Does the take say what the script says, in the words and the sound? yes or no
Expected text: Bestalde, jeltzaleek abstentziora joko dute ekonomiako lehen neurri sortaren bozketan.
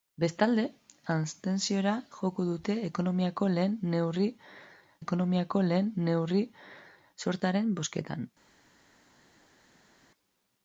no